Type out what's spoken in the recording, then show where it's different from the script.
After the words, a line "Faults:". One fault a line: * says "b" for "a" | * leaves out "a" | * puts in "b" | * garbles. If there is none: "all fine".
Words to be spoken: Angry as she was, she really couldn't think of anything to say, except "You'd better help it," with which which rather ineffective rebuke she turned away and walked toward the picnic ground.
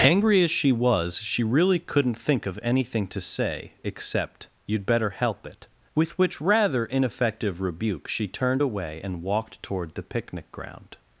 Angry as she was, she really couldn't think of anything to say, except "You'd better help it," with which rather ineffective rebuke she turned away and walked toward the picnic ground.
Faults:
* leaves out "which"